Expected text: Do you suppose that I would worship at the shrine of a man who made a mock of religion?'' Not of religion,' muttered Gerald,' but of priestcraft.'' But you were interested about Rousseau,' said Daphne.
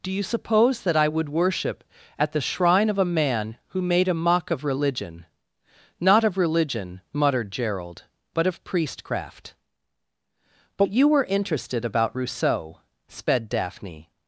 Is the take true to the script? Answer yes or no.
no